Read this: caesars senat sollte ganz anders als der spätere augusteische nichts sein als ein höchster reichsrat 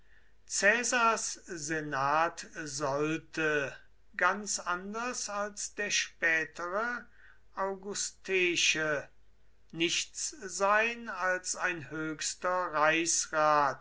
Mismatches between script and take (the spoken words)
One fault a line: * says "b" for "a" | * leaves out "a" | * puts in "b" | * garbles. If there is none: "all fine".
all fine